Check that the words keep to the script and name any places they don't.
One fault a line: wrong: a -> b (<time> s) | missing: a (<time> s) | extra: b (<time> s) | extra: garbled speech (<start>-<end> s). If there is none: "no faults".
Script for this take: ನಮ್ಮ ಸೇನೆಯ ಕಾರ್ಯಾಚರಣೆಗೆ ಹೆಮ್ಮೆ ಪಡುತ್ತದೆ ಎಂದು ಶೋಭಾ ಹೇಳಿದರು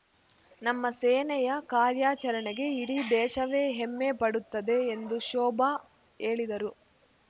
extra: ಇಡೀ ದೇಶವೇ (2.8 s)